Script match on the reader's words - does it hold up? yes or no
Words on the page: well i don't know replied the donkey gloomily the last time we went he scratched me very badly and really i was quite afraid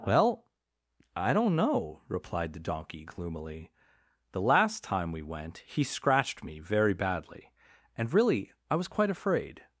yes